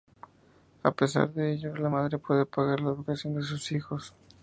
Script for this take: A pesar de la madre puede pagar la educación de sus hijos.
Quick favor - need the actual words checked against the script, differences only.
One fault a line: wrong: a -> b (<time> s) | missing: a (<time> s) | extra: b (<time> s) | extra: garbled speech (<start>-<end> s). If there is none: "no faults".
extra: ello (1.5 s)